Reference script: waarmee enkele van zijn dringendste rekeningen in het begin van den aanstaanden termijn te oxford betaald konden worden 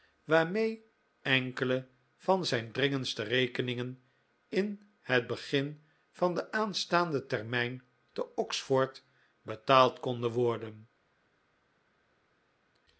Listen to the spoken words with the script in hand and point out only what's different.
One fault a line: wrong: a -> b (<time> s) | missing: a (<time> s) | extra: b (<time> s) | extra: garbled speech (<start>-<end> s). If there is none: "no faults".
no faults